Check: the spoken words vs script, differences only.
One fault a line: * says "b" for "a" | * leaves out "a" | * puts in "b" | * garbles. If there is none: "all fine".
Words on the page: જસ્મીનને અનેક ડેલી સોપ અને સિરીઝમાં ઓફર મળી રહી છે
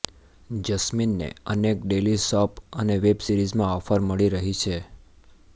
* puts in "વેબ"